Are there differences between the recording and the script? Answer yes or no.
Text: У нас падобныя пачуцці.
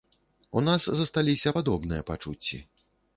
yes